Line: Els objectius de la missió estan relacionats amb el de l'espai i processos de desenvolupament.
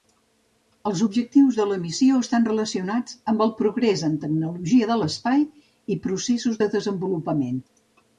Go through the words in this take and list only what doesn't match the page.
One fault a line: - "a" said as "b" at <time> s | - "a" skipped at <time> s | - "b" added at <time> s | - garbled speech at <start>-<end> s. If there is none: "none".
- "progrés en tecnologia" added at 3.6 s